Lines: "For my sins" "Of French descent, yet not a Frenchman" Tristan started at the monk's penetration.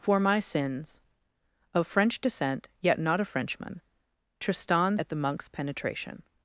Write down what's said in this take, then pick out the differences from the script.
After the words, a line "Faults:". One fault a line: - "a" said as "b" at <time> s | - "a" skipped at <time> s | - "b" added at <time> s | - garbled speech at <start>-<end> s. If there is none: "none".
"For my sins" "Of French descent, yet not a Frenchman" Tristan at the monk's penetration.
Faults:
- "started" skipped at 5.0 s